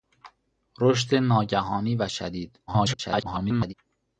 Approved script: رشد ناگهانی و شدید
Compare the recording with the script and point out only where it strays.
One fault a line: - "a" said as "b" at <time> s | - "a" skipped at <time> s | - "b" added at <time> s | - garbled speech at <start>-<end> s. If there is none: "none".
- garbled speech at 2.7-3.7 s